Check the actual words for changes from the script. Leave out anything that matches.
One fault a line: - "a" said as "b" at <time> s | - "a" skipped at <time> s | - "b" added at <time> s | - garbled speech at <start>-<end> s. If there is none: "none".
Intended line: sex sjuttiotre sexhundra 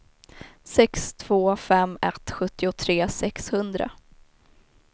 - "två fem ett" added at 1.1 s